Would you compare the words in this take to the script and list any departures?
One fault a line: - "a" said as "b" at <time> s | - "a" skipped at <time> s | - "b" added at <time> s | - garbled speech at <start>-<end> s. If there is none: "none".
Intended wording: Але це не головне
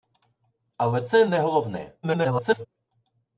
- garbled speech at 2.0-2.7 s